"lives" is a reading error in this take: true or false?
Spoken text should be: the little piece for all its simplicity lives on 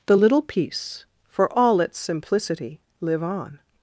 true